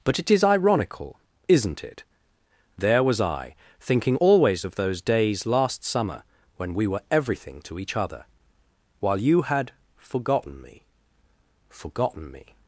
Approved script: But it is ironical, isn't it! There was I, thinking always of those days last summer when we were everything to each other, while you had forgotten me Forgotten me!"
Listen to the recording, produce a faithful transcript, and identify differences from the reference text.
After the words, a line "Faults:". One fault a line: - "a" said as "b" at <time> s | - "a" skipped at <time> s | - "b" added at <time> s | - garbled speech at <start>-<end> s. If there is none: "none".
But it is ironical, isn't it! There was I, thinking always of those days last summer when we were everything to each other, while you had forgotten me Forgotten me!"
Faults:
none